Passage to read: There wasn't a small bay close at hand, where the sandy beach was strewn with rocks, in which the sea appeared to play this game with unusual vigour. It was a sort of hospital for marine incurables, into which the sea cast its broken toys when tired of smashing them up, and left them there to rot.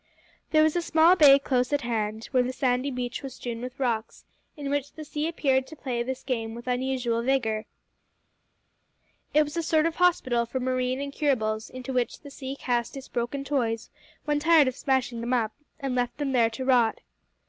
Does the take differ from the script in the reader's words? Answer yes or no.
yes